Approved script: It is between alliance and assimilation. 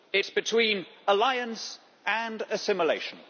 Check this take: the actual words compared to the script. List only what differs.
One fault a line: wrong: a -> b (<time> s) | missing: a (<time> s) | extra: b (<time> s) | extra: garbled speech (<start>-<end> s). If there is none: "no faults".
no faults